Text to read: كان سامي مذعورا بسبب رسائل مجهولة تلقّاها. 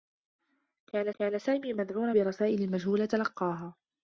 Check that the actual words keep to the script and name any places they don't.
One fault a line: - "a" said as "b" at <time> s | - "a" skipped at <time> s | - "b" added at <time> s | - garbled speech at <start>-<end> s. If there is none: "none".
- "كان" added at 1.1 s
- "بسبب" skipped at 2.1 s